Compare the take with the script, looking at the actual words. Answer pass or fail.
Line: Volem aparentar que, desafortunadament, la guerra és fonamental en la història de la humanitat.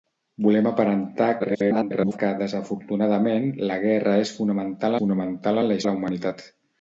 fail